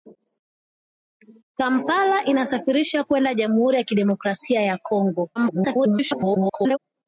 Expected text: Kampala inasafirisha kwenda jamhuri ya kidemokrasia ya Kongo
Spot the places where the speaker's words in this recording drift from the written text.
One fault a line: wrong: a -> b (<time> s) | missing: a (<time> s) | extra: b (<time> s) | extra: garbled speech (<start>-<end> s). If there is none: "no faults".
extra: garbled speech (5.3-6.8 s)